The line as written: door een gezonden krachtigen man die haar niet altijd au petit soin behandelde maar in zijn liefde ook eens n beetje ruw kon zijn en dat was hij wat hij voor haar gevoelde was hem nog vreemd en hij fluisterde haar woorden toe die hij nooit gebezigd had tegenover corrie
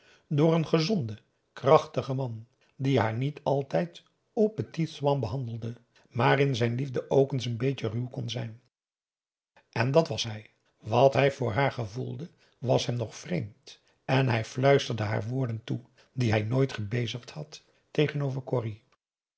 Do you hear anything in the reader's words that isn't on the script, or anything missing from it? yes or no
no